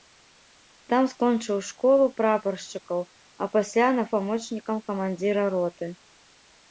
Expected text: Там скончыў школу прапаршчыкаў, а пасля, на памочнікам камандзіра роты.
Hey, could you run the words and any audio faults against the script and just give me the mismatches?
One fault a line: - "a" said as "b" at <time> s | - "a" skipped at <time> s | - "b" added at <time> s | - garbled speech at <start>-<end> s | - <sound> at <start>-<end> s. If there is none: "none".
none